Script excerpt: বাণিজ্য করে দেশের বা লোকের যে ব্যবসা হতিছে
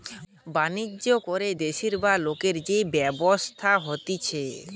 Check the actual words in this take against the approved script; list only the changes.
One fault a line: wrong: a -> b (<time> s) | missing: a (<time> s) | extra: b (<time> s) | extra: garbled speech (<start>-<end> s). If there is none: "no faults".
no faults